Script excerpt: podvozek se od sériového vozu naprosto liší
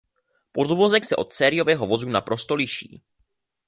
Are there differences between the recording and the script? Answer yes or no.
no